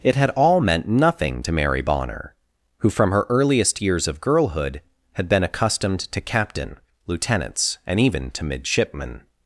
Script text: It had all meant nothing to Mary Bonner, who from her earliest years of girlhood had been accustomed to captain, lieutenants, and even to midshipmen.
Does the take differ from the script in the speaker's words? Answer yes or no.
no